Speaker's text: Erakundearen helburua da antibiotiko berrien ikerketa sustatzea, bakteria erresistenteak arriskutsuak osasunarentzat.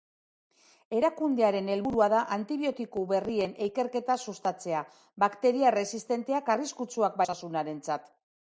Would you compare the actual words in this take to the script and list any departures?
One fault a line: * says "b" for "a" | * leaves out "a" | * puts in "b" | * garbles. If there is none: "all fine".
all fine